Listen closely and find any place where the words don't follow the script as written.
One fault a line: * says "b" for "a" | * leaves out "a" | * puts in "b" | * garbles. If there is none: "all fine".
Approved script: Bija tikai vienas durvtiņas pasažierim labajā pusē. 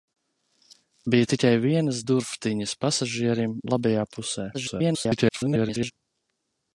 * garbles